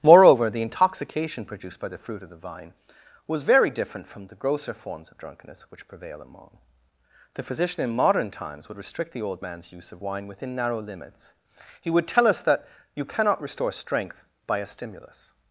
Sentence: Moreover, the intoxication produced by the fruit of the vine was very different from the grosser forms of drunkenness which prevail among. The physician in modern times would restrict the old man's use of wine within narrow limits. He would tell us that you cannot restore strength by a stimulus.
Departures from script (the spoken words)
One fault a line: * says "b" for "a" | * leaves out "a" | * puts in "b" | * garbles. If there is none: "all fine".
all fine